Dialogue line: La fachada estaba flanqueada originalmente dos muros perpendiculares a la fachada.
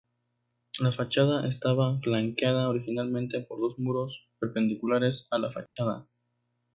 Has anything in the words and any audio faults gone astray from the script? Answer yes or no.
yes